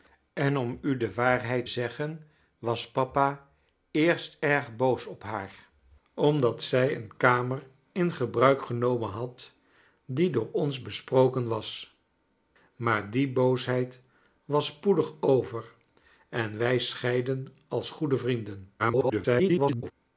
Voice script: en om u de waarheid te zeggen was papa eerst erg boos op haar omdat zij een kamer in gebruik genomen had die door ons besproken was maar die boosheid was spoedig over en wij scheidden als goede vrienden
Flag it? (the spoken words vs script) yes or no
yes